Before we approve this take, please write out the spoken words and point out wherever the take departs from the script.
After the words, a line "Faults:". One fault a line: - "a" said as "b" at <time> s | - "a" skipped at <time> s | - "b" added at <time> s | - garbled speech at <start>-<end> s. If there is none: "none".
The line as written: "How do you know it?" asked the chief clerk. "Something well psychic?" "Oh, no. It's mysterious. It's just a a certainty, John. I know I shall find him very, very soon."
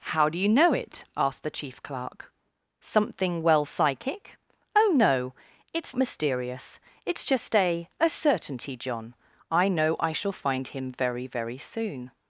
"How do you know it?" asked the chief clerk. "Something well psychic?" "Oh, no. It's mysterious. It's just a a certainty, John. I know I shall find him very, very soon."
Faults:
none